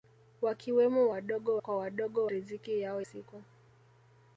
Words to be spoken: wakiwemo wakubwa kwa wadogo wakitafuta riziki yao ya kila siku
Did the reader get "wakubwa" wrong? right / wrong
wrong